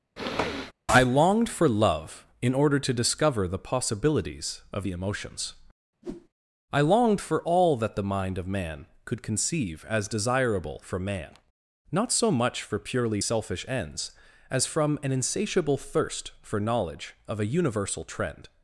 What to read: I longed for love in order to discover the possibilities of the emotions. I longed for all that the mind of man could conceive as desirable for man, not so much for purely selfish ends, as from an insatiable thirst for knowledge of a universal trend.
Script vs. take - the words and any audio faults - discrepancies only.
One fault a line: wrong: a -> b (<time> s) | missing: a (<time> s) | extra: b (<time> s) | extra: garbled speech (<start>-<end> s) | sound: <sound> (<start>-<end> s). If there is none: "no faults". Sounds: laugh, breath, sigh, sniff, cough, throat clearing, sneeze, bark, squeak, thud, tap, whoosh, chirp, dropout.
sound: sniff (0.2-0.7 s)
sound: whoosh (6.0-6.3 s)